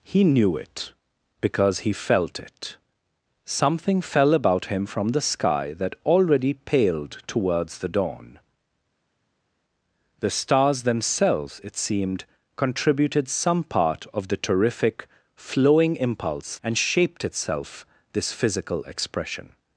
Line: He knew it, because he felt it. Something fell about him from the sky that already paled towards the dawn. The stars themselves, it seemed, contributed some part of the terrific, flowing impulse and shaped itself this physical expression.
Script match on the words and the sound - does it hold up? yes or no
yes